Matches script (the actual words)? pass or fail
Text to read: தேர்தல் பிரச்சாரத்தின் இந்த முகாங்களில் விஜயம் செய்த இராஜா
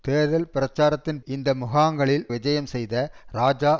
pass